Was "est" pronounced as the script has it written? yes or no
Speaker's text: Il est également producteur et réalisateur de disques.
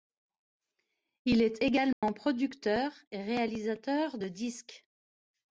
yes